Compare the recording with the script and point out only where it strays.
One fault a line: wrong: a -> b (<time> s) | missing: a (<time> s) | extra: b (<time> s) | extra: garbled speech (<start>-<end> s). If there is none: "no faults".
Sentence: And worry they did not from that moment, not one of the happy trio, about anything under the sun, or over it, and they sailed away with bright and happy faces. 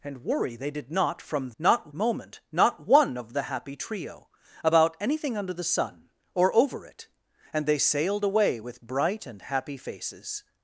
wrong: that -> not (1.6 s)